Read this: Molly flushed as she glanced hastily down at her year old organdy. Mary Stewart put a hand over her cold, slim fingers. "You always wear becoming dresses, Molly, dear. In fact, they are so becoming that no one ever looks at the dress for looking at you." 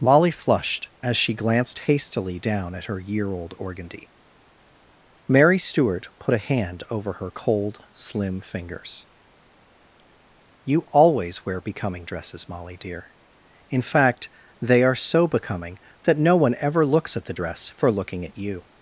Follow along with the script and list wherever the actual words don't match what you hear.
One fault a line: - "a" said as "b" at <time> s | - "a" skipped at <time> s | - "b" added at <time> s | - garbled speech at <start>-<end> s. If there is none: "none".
none